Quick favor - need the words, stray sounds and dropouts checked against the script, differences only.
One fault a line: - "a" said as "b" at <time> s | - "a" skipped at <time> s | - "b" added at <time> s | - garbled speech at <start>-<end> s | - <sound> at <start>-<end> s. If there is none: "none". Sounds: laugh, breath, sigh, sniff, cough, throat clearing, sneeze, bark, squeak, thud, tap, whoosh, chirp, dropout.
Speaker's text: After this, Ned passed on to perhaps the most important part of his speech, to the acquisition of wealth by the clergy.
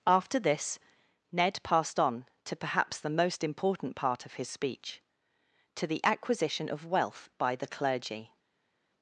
none